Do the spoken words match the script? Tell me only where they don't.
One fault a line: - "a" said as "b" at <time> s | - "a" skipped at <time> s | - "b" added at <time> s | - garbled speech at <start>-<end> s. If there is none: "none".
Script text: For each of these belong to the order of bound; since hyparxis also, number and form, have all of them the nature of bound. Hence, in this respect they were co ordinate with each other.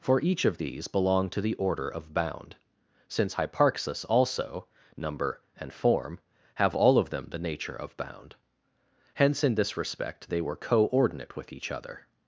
none